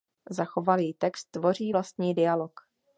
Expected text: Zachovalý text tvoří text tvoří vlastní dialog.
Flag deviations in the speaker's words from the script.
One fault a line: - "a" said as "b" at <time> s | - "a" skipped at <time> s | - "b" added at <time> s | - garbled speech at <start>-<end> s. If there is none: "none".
- "text tvoří" skipped at 1.7 s